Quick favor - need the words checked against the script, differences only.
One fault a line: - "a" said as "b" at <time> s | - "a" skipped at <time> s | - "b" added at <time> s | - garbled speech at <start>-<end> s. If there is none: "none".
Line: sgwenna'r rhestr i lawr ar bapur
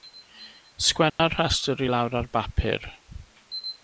none